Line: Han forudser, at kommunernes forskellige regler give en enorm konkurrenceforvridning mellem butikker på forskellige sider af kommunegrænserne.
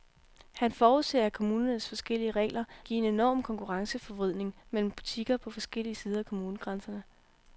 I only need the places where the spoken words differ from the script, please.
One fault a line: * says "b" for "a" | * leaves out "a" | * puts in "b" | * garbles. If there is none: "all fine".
all fine